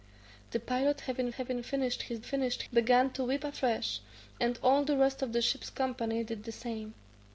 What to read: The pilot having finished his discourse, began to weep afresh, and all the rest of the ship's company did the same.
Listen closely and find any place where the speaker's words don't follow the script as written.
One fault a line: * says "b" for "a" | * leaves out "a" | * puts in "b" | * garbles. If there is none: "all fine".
* puts in "having"
* says "finished" for "discourse"